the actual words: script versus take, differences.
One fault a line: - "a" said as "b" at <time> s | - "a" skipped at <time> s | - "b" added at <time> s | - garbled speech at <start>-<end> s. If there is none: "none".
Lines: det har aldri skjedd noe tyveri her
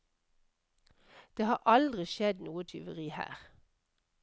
none